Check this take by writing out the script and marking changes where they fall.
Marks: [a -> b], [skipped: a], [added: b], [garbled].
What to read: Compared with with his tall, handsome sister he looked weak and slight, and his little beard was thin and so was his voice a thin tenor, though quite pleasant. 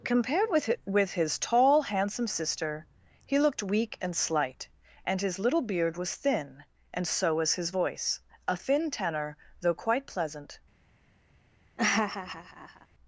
Compared with with his tall, handsome sister he looked weak and slight, and his little beard was thin and so was his voice a thin tenor, though quite pleasant.